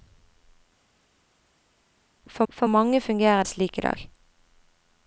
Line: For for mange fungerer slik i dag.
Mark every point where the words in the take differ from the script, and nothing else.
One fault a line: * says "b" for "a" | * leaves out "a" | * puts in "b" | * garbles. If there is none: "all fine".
all fine